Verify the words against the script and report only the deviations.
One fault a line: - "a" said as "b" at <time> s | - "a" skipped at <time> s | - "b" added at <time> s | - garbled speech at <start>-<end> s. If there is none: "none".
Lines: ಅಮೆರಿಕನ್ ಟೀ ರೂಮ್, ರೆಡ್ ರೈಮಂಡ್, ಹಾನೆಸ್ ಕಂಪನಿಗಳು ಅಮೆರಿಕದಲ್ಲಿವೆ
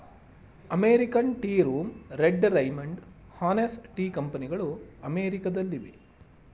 - "ಟೀ" added at 4.0 s